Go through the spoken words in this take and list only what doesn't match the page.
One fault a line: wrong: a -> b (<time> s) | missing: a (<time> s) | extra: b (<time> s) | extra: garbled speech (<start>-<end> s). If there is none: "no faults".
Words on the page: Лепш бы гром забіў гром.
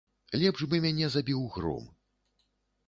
wrong: гром -> мяне (0.8 s)